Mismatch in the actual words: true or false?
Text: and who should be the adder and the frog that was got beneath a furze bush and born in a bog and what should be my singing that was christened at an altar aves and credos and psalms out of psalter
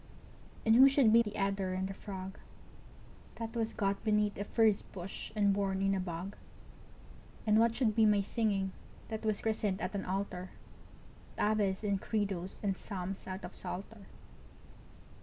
false